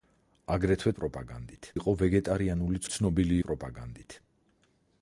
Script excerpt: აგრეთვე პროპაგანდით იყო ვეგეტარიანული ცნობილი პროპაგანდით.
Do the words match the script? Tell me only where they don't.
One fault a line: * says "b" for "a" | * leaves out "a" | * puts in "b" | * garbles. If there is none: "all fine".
all fine